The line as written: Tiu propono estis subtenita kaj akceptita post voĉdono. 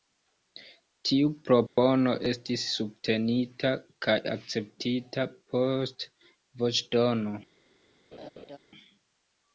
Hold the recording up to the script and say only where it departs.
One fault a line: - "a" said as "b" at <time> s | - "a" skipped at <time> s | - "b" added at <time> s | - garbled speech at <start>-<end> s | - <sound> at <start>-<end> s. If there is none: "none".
- dropout at 1.7-1.8 s
- laugh at 8.1-8.6 s